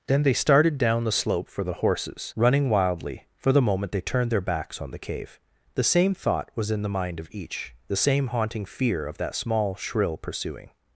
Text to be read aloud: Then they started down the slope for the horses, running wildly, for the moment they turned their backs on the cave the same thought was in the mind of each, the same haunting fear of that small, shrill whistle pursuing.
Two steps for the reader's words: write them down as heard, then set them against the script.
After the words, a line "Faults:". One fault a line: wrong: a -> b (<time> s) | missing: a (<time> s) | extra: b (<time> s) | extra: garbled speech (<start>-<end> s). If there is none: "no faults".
Then they started down the slope for the horses, running wildly, for the moment they turned their backs on the cave the same thought was in the mind of each, the same haunting fear of that small, shrill pursuing.
Faults:
missing: whistle (10.2 s)